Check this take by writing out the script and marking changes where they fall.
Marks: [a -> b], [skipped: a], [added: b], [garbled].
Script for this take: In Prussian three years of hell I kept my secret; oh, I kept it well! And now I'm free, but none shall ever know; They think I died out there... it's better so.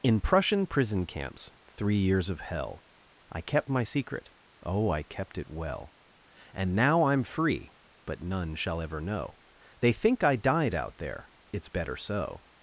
In Prussian [added: prison camps] three years of hell I kept my secret; oh, I kept it well! And now I'm free, but none shall ever know; They think I died out there... it's better so.